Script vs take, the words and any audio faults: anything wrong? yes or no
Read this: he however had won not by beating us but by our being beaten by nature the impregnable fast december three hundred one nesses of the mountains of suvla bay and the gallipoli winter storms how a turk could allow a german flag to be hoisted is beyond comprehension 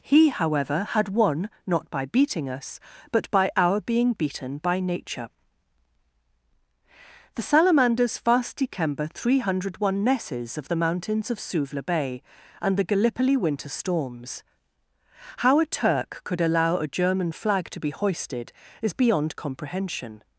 yes